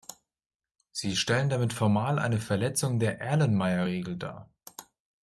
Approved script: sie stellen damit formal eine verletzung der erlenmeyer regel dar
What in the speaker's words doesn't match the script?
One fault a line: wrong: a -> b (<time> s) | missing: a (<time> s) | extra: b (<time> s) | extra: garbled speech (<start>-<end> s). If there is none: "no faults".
no faults